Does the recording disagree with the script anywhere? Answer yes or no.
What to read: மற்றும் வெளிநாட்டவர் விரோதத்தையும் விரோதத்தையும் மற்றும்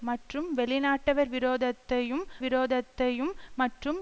no